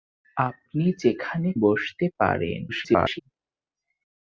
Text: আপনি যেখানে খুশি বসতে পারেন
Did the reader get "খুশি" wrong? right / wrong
wrong